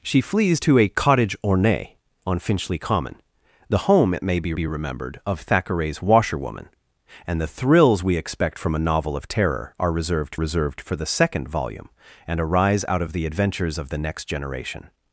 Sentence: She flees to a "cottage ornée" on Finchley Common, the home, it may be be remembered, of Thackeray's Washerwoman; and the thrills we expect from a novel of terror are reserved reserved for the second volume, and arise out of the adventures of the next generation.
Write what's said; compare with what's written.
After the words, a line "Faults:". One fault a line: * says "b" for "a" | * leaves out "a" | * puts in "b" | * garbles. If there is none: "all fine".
She flees to a "cottage ornée" on Finchley Common, the home, it may be be remembered, of Thackeray's Washerwoman; and the thrills we expect from a novel of terror are reserved reserved for the second volume, and arise out of the adventures of the next generation.
Faults:
all fine